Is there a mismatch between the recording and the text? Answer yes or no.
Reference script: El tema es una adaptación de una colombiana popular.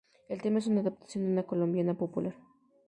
no